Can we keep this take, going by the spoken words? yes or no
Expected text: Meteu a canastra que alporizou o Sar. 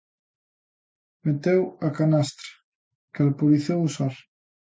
yes